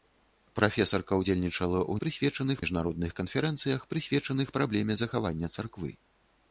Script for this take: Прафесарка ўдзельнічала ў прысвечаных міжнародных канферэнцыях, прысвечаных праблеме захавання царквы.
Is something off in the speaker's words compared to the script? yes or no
no